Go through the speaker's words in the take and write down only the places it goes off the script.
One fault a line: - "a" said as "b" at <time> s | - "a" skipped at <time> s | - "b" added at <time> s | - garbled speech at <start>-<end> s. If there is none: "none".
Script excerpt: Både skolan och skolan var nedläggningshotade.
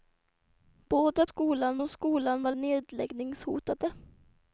none